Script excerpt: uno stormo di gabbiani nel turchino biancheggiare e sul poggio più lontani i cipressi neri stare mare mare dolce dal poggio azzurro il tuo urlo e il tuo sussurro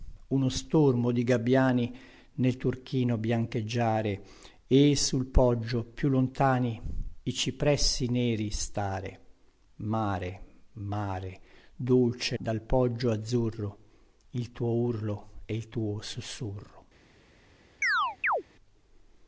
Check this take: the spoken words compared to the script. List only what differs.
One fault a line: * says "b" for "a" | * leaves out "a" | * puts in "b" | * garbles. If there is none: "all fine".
all fine